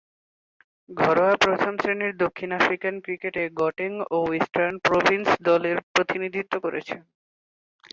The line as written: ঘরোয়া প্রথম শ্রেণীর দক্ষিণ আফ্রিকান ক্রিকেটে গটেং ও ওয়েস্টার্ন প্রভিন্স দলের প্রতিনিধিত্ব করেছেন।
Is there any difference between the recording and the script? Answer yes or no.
no